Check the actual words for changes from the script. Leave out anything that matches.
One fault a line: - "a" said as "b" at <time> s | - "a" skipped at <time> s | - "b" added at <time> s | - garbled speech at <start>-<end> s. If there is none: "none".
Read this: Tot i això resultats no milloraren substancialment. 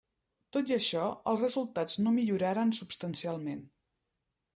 - "els" added at 1.3 s